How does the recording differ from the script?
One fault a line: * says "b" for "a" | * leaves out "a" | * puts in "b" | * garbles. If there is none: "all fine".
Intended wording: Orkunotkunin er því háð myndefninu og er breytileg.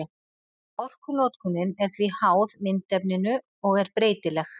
all fine